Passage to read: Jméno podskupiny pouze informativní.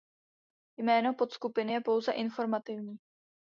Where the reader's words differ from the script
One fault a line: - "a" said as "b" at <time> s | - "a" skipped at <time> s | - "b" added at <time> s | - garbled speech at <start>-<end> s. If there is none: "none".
- "je" added at 1.7 s